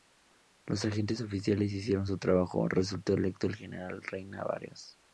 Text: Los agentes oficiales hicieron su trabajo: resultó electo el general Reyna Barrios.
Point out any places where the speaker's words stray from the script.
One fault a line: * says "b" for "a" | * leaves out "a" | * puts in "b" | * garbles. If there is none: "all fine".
all fine